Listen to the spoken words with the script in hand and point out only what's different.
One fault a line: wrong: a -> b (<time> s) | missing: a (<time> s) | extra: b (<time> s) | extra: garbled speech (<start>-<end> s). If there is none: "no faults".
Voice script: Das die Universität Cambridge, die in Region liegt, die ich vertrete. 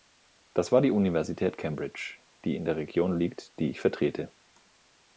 extra: war (0.7 s)
extra: der (2.6 s)